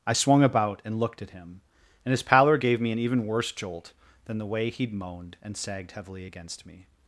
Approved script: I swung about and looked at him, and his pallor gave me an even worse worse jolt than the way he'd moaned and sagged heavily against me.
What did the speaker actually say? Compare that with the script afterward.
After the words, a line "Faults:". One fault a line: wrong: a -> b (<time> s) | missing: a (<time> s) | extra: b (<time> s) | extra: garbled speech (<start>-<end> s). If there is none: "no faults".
I swung about and looked at him, and his pallor gave me an even worse jolt than the way he'd moaned and sagged heavily against me.
Faults:
missing: worse (3.5 s)